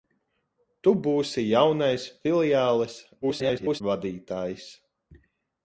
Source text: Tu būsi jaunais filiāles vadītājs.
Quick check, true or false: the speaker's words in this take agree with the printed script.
false